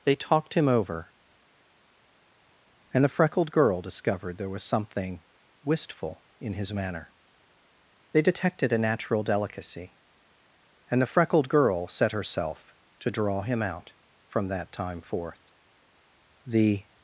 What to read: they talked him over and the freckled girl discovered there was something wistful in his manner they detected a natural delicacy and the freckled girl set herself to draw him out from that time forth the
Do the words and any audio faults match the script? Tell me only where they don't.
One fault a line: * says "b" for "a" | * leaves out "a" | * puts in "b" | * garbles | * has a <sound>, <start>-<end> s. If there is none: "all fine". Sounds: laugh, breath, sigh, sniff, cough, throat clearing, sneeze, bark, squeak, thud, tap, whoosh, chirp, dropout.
all fine